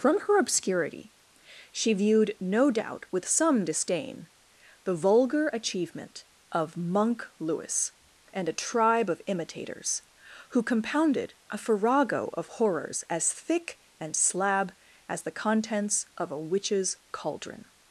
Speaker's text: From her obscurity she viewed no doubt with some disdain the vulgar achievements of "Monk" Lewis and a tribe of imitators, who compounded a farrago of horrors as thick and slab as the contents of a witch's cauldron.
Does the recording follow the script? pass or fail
fail